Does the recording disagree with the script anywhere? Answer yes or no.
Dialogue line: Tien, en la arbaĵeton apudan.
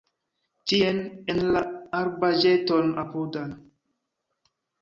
no